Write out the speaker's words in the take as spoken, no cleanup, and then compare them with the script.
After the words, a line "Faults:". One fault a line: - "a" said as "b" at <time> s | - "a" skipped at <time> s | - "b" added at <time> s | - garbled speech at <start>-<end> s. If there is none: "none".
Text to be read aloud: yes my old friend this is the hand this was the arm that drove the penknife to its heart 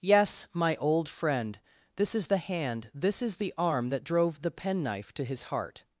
yes my old friend this is the hand this is the arm that drove the penknife to his heart
Faults:
- "was" said as "is" at 3.2 s
- "its" said as "his" at 5.2 s